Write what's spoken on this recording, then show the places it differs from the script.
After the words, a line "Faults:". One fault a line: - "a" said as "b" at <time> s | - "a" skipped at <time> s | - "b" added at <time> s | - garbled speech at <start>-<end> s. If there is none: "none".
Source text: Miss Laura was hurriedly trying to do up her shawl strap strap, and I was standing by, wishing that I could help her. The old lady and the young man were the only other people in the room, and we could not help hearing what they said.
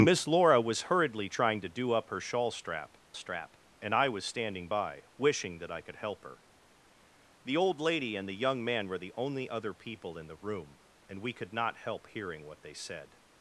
Miss Laura was hurriedly trying to do up her shawl strap strap, and I was standing by, wishing that I could help her. The old lady and the young man were the only other people in the room, and we could not help hearing what they said.
Faults:
none